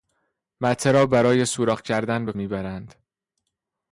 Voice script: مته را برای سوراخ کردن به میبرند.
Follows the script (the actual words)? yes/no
yes